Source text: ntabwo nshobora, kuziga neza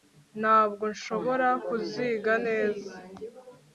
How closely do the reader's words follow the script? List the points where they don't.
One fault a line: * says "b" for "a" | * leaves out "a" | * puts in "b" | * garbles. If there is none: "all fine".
all fine